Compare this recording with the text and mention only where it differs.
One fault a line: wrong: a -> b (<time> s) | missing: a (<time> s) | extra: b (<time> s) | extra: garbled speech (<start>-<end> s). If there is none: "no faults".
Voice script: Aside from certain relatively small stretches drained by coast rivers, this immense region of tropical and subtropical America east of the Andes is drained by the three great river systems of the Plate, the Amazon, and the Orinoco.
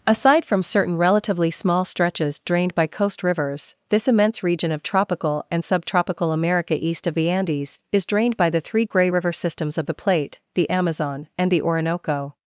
wrong: great -> grey (8.8 s)